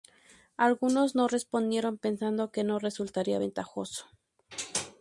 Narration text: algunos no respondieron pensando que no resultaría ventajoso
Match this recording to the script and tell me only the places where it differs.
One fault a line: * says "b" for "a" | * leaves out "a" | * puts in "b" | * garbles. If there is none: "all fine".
all fine